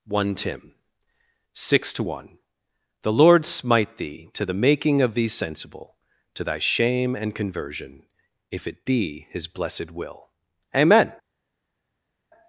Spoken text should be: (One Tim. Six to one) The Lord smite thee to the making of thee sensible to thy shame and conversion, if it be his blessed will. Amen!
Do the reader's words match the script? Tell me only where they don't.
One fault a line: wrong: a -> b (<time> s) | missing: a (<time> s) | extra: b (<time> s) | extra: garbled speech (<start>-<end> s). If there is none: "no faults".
no faults